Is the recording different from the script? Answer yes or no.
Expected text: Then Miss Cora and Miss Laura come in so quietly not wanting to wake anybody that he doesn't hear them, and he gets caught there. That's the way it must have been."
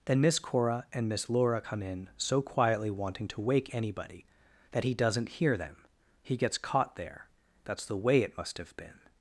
yes